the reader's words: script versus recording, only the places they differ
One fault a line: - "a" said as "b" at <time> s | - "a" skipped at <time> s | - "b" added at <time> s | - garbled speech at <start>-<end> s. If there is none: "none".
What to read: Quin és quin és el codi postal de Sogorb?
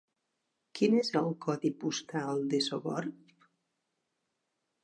- "quin és" skipped at 1.1 s